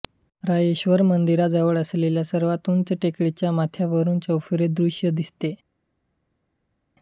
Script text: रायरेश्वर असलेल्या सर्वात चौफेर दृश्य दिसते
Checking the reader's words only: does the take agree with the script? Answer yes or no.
no